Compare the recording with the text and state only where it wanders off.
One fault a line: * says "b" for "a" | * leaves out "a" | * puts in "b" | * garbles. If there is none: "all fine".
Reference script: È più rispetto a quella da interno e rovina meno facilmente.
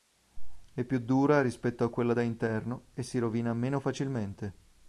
* puts in "dura"
* puts in "si"